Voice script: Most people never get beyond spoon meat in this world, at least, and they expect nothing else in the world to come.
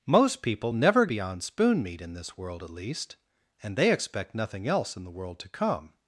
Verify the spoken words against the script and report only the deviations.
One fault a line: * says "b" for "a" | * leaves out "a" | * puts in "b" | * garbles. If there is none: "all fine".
* leaves out "get"